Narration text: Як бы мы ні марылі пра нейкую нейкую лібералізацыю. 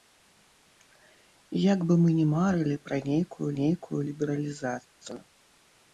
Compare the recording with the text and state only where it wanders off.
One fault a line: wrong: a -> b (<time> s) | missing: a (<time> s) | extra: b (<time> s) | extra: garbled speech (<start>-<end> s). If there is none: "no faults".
no faults